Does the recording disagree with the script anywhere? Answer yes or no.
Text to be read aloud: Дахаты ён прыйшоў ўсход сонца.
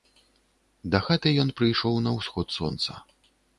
yes